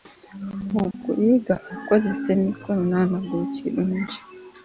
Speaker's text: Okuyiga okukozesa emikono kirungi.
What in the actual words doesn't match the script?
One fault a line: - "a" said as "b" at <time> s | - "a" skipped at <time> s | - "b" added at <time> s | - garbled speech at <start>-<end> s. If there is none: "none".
- "n'amagulu" added at 2.9 s